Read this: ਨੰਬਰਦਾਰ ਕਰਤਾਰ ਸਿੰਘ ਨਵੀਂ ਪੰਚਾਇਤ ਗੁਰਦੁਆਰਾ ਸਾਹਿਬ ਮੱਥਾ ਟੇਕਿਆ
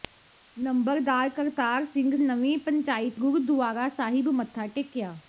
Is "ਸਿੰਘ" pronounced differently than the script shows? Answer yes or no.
no